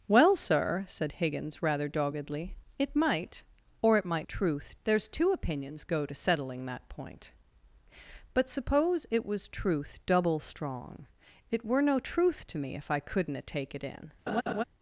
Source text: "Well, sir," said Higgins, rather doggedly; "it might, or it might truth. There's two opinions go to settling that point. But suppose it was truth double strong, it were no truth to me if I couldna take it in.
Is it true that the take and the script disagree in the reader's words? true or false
false